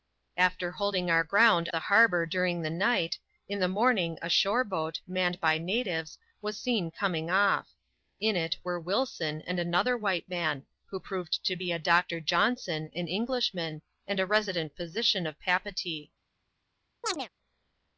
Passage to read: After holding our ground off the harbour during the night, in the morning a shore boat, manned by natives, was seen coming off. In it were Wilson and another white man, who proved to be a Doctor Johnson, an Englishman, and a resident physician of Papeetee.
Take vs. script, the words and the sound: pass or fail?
fail